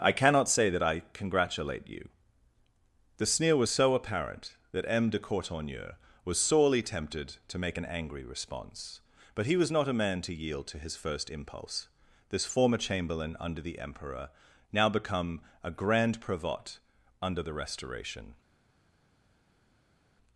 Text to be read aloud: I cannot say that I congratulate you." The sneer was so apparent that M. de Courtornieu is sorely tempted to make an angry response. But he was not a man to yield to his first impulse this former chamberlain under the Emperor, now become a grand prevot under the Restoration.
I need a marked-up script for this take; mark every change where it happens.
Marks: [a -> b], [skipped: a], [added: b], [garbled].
I cannot say that I congratulate you." The sneer was so apparent that M. de Courtornieu [is -> was] sorely tempted to make an angry response. But he was not a man to yield to his first impulse this former chamberlain under the Emperor, now become a grand prevot under the Restoration.